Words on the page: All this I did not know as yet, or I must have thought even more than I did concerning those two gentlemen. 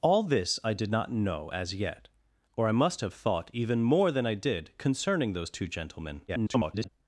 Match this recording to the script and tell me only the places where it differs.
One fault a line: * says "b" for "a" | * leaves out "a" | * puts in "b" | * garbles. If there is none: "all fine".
* garbles